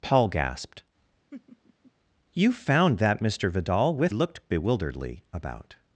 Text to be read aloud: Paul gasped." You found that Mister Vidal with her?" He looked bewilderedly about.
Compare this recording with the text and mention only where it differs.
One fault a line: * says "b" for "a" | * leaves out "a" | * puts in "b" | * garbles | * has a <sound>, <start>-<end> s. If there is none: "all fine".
* has a laugh, 1.3-1.9 s
* leaves out "her He"